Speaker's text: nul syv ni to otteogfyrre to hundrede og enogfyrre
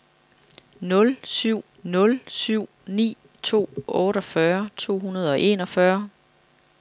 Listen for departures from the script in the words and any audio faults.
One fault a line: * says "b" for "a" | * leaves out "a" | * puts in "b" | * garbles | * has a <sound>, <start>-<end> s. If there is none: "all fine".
* puts in "nul syv"